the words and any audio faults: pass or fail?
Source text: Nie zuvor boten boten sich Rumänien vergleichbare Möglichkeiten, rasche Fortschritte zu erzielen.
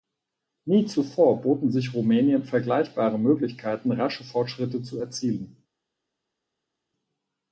fail